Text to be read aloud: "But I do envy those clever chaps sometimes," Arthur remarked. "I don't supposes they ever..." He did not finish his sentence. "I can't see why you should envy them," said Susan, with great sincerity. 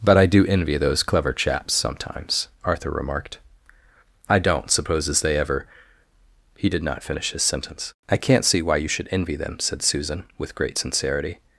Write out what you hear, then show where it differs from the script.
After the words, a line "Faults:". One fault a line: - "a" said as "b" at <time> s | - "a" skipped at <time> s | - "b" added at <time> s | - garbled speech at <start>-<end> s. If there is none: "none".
"But I do envy those clever chaps sometimes," Arthur remarked. "I don't supposes they ever..." He did not finish his sentence. "I can't see why you should envy them," said Susan, with great sincerity.
Faults:
none